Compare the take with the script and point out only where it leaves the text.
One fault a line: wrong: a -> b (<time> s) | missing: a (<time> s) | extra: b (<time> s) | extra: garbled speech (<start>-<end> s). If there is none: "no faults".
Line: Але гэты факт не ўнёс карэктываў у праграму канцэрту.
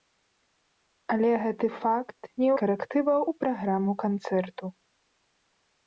missing: ўнёс (2.5 s)